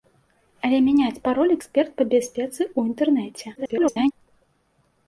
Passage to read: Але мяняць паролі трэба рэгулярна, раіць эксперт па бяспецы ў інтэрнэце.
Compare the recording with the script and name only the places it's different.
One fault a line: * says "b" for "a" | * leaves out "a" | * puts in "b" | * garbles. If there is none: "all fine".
* leaves out "трэба рэгулярна раіць"
* garbles